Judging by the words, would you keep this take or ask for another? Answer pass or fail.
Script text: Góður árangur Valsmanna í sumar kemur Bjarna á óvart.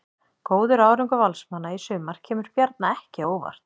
fail